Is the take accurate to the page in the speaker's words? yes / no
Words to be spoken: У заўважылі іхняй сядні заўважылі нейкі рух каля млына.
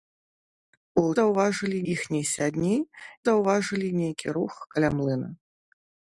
yes